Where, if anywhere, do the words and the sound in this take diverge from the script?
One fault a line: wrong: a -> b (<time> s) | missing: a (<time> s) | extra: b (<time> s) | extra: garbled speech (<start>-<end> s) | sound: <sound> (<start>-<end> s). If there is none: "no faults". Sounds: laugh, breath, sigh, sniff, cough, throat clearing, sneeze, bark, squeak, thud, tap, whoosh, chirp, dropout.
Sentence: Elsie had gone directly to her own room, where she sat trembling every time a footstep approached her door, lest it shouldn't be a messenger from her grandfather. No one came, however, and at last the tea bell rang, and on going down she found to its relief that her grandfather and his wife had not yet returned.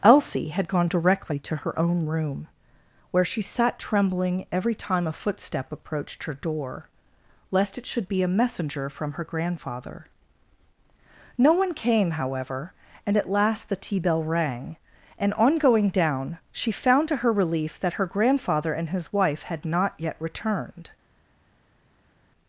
wrong: shouldn't -> should (7.8 s)
wrong: its -> her (17.2 s)